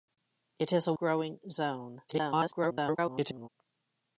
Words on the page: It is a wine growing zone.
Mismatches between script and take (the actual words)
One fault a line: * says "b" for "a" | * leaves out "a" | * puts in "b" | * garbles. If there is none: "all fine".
* leaves out "wine"
* garbles